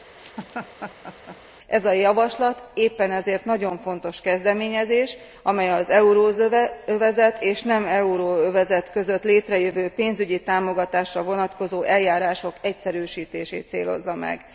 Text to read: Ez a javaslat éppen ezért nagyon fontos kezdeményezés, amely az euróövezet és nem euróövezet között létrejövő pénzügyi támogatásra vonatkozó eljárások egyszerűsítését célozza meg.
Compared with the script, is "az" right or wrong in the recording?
right